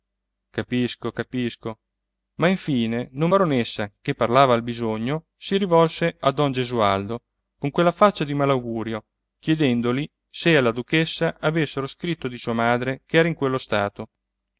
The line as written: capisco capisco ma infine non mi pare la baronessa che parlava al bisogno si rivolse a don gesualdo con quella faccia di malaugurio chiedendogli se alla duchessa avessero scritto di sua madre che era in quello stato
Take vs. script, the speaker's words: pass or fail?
fail